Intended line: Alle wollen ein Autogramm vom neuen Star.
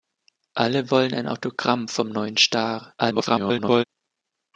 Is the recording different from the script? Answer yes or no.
yes